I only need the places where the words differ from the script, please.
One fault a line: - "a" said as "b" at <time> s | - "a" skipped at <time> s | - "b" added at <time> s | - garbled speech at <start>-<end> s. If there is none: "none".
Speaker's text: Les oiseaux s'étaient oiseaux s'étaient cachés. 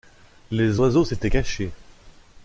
- "oiseaux s'étaient" skipped at 1.3 s